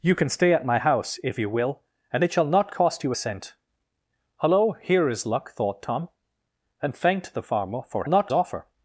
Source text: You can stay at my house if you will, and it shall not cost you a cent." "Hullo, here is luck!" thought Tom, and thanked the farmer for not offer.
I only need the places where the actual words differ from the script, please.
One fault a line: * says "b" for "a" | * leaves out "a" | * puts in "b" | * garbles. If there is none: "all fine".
all fine